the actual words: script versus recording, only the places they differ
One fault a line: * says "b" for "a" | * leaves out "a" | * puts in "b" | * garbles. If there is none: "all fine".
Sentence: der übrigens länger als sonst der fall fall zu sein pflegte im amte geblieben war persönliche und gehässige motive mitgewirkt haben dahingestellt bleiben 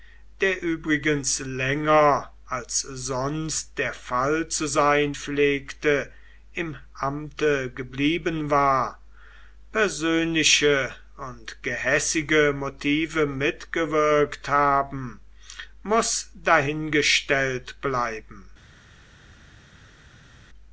* leaves out "fall"
* puts in "muß"